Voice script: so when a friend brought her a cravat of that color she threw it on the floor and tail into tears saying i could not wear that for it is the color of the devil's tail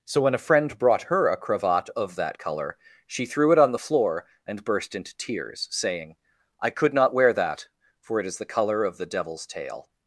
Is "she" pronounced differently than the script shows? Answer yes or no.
no